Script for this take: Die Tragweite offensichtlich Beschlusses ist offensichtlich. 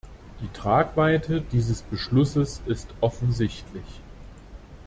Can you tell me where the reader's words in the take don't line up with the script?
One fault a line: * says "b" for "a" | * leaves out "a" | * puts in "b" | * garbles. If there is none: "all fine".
* says "dieses" for "offensichtlich"